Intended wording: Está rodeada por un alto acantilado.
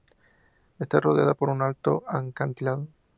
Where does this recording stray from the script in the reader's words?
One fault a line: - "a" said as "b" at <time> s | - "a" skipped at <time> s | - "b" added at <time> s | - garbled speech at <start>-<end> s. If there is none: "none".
none